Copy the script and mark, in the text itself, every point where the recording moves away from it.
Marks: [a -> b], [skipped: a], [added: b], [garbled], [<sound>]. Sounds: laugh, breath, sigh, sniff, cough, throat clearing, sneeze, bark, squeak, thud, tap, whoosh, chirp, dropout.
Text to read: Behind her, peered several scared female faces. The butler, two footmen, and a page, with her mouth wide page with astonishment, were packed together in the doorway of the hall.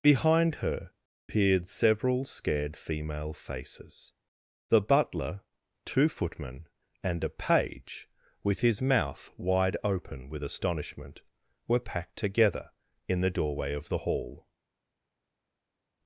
Behind her, peered several scared female faces. The butler, two footmen, and a page, with [her -> his] mouth wide [page -> open] with astonishment, were packed together in the doorway of the hall.